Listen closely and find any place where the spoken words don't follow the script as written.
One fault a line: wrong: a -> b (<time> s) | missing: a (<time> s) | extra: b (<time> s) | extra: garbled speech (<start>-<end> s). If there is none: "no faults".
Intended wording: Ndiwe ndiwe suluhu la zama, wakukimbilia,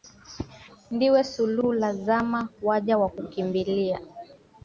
missing: ndiwe (1.2 s)
extra: waja (2.6 s)